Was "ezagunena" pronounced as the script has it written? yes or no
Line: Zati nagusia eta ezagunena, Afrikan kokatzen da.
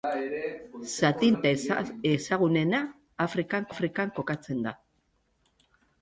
yes